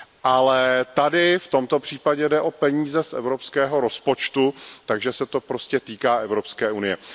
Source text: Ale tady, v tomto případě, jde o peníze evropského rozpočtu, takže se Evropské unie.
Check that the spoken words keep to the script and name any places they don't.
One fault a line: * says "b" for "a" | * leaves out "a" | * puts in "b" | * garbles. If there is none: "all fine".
* puts in "z"
* puts in "to prostě týká"